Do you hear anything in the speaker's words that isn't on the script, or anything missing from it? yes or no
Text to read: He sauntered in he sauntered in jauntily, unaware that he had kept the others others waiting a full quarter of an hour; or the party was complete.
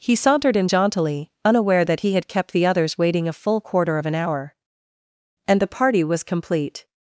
yes